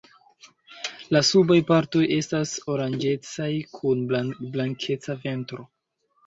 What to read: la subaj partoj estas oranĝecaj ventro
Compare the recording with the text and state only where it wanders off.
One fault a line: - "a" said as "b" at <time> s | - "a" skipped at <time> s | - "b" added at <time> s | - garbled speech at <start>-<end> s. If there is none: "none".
- "kun blankeca" added at 3.7 s